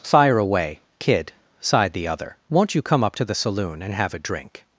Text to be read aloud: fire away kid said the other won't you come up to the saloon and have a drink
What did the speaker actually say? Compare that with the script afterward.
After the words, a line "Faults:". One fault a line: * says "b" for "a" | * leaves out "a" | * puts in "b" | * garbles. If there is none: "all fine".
fire away kid sighed the other won't you come up to the saloon and have a drink
Faults:
* says "sighed" for "said"